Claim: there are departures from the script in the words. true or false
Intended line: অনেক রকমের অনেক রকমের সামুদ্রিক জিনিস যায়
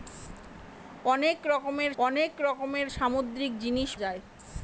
false